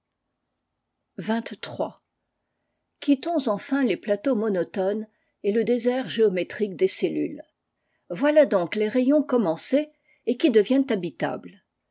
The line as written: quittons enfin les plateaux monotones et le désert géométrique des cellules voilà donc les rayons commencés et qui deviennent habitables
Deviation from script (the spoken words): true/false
false